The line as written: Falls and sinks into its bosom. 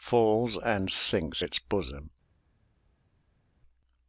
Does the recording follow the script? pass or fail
fail